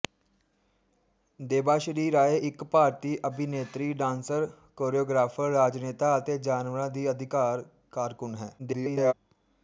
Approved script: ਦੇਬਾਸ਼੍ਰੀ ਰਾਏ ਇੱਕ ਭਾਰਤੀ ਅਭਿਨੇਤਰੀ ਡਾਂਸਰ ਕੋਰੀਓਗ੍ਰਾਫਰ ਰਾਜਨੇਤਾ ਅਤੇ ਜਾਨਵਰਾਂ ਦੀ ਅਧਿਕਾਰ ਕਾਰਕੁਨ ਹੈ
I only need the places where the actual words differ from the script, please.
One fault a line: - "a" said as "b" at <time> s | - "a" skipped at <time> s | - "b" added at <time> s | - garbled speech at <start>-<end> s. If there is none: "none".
- garbled speech at 8.6-9.1 s